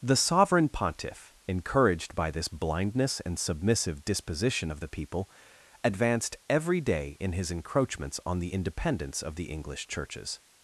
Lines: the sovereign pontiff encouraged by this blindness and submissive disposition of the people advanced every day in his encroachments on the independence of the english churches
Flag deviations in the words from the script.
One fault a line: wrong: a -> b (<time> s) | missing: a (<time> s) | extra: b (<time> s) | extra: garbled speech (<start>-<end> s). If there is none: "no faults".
no faults